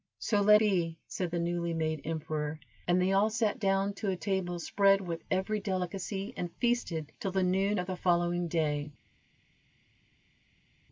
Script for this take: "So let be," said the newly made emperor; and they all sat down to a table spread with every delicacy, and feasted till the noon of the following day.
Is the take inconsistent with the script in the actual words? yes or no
no